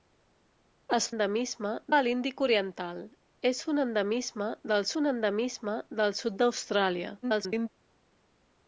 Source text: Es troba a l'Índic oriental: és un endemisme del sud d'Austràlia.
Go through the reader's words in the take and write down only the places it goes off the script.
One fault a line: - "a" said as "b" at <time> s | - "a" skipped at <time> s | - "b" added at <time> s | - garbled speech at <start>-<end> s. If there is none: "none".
- "troba" said as "endemisme" at 1.1 s
- "un endemisme del" added at 5.0 s
- garbled speech at 7.2-7.7 s